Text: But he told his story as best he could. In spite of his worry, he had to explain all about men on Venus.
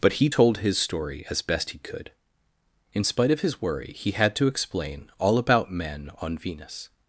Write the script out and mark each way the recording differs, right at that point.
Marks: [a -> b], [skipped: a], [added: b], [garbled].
But he told his story as best he could. In spite of his worry, he had to explain all about men on Venus.